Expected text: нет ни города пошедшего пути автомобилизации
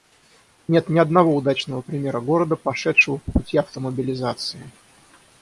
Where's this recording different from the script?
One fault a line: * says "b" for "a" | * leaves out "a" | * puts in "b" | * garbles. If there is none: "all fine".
* puts in "одного удачного примера"
* puts in "по"